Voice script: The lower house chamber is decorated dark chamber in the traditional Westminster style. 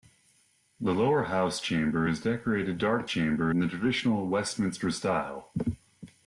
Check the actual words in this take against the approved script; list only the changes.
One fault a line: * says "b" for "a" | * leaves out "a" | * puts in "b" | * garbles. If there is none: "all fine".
all fine